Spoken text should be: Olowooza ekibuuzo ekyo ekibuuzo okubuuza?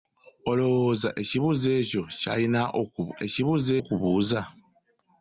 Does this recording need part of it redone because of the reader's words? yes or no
no